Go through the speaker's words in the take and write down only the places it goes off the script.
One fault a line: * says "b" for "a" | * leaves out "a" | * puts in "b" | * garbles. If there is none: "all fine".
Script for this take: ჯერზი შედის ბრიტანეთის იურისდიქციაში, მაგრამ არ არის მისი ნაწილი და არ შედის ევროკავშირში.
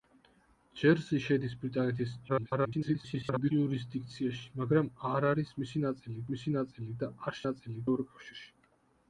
* garbles
* puts in "მისი ნაწილი"
* says "ნაწილი" for "შედის"